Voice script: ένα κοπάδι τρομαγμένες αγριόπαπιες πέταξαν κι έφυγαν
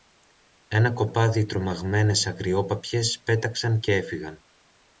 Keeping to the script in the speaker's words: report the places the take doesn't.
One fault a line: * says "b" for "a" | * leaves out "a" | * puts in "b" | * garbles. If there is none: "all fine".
all fine